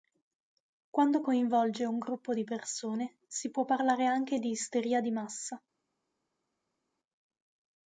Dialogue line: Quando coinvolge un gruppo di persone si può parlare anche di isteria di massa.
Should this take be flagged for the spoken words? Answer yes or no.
no